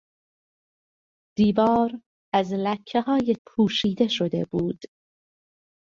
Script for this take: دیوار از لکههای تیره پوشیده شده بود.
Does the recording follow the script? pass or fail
fail